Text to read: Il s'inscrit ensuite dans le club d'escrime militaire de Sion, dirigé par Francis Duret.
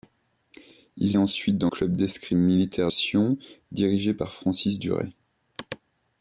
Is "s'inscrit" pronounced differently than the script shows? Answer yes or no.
yes